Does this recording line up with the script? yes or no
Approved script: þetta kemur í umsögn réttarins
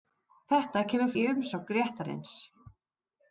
yes